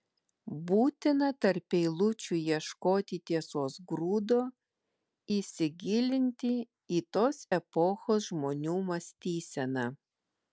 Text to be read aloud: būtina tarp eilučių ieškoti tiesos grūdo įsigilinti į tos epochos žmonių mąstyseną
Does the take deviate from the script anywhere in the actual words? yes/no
no